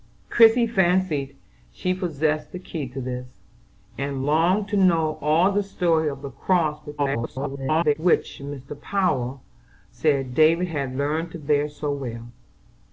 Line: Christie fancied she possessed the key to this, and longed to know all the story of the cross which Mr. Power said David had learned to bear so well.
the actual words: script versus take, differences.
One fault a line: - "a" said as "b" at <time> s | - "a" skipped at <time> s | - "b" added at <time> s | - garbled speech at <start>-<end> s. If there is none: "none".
- garbled speech at 7.0-7.9 s